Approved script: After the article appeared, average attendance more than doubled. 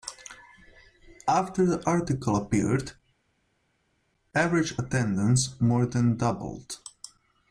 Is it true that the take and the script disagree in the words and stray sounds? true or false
false